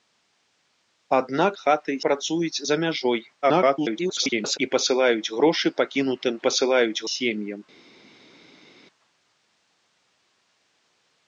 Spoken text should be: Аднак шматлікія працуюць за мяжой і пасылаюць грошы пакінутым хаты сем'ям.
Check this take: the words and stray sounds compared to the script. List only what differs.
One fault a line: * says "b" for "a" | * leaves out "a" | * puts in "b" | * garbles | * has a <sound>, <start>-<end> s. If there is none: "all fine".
* says "хаты" for "шматлікія"
* garbles
* says "пасылаюць" for "хаты"